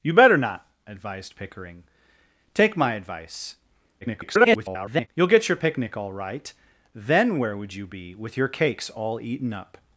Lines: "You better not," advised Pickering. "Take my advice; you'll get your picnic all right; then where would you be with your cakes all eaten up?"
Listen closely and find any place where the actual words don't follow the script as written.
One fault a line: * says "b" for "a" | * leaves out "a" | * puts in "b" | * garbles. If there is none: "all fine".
* garbles